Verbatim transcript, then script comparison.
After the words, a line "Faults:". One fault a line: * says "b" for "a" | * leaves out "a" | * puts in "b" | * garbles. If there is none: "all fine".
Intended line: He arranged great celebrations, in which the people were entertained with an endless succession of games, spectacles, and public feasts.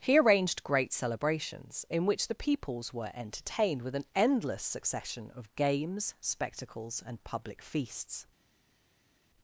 He arranged great celebrations, in which the peoples were entertained with an endless succession of games, spectacles, and public feasts.
Faults:
* says "peoples" for "people"